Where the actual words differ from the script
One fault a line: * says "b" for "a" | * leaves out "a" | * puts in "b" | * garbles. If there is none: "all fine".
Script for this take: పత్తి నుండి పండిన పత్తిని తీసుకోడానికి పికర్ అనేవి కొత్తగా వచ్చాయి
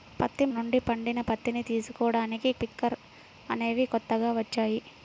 all fine